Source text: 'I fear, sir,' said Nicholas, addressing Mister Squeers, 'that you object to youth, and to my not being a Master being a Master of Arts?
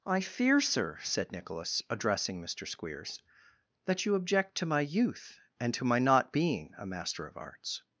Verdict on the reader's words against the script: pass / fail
fail